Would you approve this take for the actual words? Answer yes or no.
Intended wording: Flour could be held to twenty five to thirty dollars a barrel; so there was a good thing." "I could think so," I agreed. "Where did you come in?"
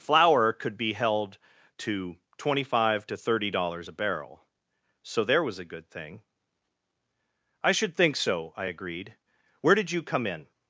no